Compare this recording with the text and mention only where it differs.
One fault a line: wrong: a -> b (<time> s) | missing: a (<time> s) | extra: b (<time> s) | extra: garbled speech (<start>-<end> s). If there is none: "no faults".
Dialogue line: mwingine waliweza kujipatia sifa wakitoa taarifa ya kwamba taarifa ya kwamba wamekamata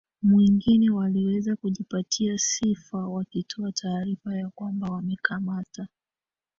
missing: taarifa ya kwamba (4.9 s)